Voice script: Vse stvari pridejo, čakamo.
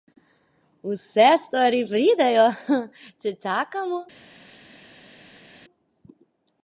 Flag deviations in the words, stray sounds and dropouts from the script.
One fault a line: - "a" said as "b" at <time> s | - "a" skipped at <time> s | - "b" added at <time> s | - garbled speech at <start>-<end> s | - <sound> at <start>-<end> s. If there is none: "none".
- "če" added at 3.2 s